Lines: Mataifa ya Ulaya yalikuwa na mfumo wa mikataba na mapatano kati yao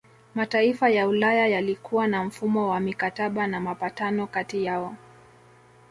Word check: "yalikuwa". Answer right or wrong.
right